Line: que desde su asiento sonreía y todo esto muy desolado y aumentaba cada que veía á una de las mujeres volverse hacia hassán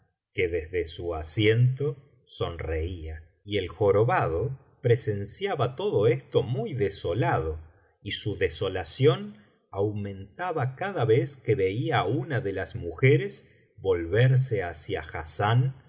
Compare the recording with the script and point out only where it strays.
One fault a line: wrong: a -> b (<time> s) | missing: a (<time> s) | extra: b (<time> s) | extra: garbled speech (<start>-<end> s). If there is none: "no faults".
extra: el jorobado presenciaba (3.6 s)
extra: su desolación (8.1 s)
extra: vez (11.1 s)